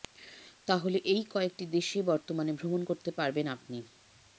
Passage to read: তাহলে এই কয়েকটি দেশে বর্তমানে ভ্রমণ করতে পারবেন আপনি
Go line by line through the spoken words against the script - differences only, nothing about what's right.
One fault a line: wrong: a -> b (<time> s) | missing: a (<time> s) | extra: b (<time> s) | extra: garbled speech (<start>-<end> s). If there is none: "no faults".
no faults